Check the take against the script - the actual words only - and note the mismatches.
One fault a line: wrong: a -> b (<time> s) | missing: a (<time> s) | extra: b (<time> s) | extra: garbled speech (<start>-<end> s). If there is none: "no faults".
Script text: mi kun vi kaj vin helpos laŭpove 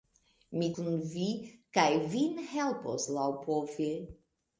no faults